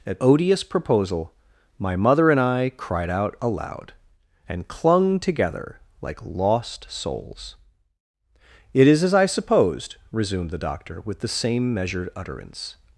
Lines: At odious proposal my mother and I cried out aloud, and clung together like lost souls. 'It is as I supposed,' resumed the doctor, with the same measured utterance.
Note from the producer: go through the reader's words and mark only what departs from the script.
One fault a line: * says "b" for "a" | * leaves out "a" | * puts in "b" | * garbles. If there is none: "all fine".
all fine